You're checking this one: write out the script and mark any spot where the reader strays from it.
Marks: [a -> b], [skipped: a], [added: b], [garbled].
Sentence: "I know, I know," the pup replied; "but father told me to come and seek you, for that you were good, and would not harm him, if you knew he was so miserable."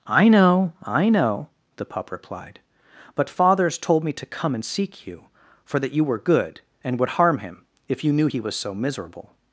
"I know, I know," the pup replied; "but [father -> fathers] told me to come and seek you, for that you were good, and would [skipped: not] harm him, if you knew he was so miserable."